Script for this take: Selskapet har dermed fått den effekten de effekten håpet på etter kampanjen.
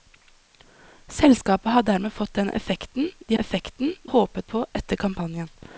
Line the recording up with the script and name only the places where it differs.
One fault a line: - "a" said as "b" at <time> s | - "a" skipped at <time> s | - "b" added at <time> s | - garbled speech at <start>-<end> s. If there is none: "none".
none